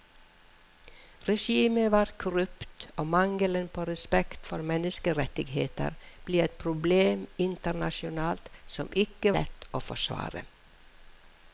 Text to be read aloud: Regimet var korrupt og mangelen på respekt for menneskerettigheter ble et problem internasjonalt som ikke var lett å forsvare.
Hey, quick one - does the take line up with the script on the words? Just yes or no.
no